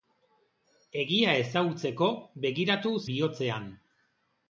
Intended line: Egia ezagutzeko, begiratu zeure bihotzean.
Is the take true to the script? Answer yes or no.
no